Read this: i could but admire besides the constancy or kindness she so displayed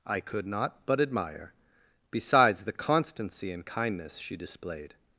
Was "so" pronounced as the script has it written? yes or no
no